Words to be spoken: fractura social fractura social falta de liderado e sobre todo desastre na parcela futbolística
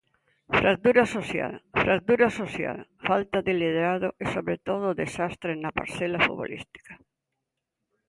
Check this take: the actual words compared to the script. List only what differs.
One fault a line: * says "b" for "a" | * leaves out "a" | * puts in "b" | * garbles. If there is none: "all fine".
all fine